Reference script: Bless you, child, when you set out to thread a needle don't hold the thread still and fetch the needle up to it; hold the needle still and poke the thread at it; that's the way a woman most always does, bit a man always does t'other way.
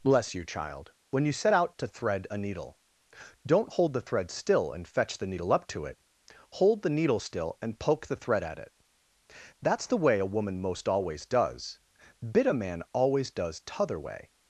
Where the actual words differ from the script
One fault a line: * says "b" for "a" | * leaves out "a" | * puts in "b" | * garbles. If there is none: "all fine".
all fine